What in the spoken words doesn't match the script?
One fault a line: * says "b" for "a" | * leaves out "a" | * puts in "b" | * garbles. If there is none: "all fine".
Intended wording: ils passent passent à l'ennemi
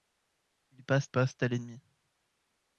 all fine